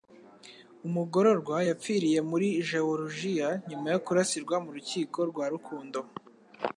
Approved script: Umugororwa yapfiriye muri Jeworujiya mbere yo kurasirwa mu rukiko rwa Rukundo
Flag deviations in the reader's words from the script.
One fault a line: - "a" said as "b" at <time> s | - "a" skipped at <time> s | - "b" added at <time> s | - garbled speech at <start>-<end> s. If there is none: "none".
- "mbere" said as "nyuma" at 3.7 s